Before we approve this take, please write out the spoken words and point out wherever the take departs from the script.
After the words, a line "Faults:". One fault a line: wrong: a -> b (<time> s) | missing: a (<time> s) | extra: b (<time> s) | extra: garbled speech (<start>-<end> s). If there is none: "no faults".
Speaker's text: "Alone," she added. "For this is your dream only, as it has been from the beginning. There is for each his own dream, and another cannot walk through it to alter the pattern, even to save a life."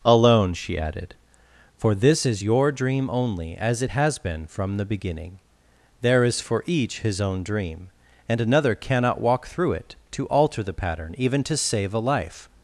"Alone," she added. "For this is your dream only, as it has been from the beginning. There is for each his own dream, and another cannot walk through it to alter the pattern, even to save a life."
Faults:
no faults